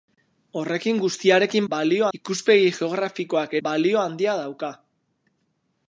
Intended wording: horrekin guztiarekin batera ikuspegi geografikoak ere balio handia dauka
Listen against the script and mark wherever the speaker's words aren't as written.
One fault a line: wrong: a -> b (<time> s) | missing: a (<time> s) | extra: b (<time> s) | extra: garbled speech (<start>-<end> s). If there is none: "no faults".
wrong: batera -> balio (1.7 s)
missing: ere (3.6 s)